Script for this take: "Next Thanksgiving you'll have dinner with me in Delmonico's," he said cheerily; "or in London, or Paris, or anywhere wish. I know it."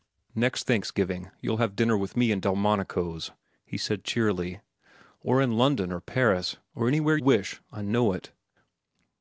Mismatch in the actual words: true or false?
false